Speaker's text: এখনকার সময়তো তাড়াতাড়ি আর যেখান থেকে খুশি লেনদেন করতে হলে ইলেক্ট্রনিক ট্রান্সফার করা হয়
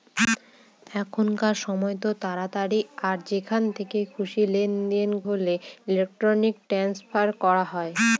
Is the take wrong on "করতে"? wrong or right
wrong